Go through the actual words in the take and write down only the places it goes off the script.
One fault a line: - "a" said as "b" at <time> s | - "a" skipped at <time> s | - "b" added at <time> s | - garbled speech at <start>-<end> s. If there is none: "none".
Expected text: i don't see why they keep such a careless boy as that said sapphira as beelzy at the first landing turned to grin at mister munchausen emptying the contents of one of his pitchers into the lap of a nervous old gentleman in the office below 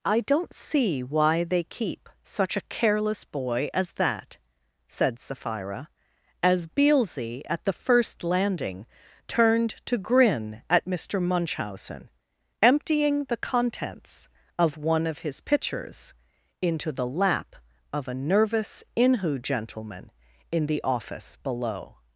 - "old" said as "inhu" at 18.9 s